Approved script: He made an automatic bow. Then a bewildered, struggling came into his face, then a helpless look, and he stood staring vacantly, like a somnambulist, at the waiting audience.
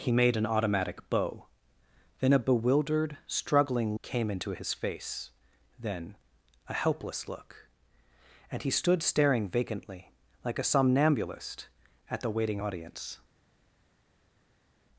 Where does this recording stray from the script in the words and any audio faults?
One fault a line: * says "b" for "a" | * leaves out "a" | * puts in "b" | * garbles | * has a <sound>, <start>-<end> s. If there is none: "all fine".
all fine